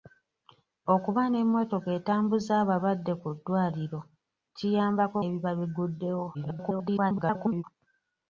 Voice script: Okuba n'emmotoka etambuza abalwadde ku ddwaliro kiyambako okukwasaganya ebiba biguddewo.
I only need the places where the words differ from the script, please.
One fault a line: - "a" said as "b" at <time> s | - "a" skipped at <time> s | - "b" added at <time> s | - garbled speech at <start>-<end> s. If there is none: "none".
- "okukwasaganya" skipped at 5.2 s
- garbled speech at 6.3-7.6 s